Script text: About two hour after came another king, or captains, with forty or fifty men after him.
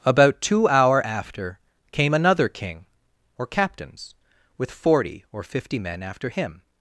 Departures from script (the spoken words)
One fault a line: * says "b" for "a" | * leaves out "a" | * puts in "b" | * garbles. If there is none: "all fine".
all fine